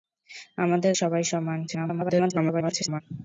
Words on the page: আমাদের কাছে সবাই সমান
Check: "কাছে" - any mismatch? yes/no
yes